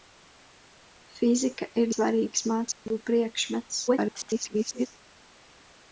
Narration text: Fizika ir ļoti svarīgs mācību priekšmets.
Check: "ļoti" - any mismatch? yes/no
yes